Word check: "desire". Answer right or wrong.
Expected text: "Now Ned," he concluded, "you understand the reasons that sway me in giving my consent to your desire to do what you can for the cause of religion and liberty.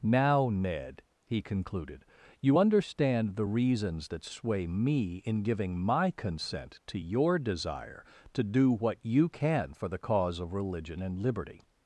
right